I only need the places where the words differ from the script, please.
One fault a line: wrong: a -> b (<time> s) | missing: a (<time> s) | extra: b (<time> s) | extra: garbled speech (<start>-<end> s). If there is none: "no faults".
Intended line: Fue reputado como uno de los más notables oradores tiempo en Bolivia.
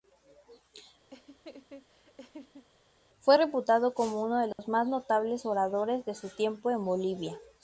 extra: de su (6.0 s)